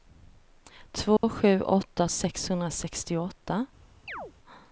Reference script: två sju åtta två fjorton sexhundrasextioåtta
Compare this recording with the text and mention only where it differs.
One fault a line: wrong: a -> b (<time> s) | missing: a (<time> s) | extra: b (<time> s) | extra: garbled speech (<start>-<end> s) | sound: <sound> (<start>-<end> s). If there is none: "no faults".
sound: dropout (1.2-1.2 s)
missing: två fjorton (2.1 s)
sound: chirp (4.1-4.3 s)